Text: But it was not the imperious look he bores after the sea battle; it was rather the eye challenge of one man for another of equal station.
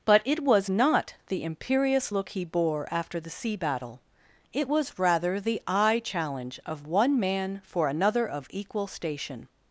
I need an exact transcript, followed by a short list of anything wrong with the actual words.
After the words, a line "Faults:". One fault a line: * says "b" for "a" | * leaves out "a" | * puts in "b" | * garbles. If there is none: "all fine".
But it was not the imperious look he bore after the sea battle; it was rather the eye challenge of one man for another of equal station.
Faults:
* says "bore" for "bores"